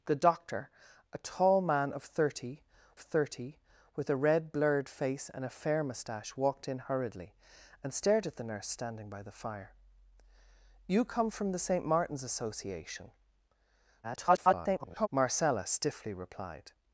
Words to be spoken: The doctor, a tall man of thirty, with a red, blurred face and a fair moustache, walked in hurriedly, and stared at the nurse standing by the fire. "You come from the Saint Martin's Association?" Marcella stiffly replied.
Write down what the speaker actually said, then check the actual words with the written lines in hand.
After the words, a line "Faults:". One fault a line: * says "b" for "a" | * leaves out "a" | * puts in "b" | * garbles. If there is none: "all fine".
The doctor, a tall man of thirty thirty, with a red, blurred face and a fair moustache, walked in hurriedly, and stared at the nurse standing by the fire. "You come from the Saint Martin's Association?" [garbled] Marcella stiffly replied.
Faults:
* puts in "thirty"
* garbles